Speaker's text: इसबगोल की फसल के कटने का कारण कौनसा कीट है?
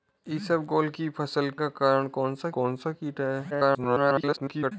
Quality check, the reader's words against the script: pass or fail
fail